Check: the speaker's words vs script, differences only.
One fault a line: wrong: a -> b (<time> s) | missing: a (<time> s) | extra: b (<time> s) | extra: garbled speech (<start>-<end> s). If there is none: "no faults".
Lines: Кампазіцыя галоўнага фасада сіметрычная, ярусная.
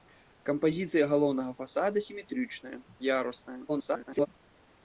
extra: garbled speech (3.7-4.3 s)